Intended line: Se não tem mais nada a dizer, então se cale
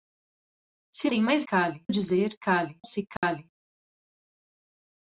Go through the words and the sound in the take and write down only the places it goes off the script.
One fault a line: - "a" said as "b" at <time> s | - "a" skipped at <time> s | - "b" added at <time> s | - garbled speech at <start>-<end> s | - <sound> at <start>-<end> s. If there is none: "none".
- "não" skipped at 1.1 s
- "nada" said as "cale" at 1.4 s
- "então" said as "cale" at 2.4 s
- dropout at 3.2-3.2 s